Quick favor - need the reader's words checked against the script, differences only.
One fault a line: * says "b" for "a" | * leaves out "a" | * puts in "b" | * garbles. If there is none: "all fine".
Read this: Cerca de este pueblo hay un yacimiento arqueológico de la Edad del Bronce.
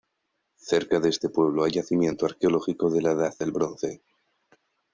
* leaves out "un"